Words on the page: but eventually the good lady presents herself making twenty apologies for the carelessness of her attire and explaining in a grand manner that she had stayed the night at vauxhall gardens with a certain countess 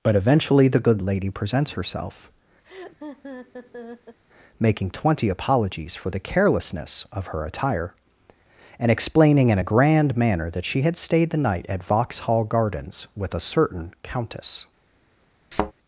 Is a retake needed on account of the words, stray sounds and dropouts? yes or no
yes